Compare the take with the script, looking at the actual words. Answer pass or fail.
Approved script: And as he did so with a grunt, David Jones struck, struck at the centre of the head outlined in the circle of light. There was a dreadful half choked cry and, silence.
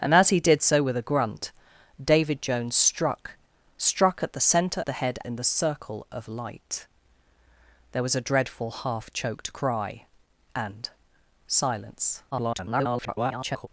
fail